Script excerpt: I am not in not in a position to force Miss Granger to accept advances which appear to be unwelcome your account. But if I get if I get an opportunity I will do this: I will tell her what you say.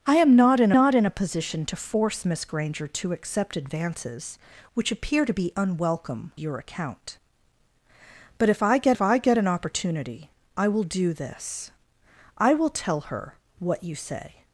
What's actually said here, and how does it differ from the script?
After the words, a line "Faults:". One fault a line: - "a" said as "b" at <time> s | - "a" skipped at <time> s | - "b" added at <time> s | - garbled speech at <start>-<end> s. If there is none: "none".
I am not in not in a position to force Miss Granger to accept advances which appear to be unwelcome your account. But if I get if I get an opportunity I will do this: I will tell her what you say.
Faults:
none